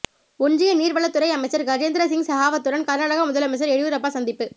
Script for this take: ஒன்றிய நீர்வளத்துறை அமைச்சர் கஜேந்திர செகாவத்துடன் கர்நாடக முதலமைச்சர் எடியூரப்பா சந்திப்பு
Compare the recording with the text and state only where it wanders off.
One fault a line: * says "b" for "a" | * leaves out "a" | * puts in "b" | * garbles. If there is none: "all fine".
* puts in "சிங்"